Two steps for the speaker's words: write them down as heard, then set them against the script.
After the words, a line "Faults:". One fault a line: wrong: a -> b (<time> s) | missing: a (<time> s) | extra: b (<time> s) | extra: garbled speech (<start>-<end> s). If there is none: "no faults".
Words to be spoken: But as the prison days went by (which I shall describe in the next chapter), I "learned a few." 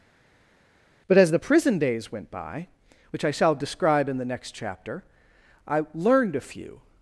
But as the prison days went by (which I shall describe in the next chapter), I "learned a few."
Faults:
no faults